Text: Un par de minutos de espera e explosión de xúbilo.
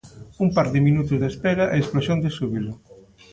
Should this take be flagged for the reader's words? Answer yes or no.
no